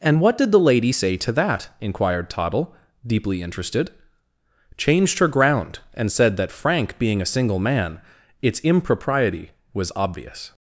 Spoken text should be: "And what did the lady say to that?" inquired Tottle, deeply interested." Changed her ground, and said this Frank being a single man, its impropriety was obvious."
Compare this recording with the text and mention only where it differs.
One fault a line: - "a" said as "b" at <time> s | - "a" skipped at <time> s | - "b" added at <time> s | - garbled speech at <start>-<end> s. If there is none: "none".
- "this" said as "that" at 6.4 s